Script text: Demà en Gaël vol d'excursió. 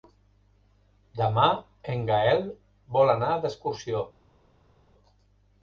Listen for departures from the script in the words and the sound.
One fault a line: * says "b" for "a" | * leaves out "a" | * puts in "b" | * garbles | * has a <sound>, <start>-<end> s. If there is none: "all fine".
* puts in "anar"